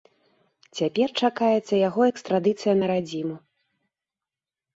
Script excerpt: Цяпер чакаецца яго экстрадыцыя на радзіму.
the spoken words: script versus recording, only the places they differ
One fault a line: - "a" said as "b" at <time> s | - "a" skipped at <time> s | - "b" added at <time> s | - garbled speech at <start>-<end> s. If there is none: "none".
none